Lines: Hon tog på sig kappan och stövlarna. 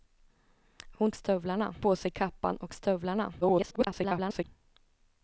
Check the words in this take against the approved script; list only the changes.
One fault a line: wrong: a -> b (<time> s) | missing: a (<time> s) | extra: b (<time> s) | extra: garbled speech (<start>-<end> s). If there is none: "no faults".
wrong: tog -> stövlarna (1.1 s)
extra: garbled speech (3.4-4.4 s)